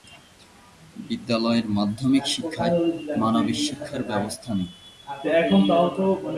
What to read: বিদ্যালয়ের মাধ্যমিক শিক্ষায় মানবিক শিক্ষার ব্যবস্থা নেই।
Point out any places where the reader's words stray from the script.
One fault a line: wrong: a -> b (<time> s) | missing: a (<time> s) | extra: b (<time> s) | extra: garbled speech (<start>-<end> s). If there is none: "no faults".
no faults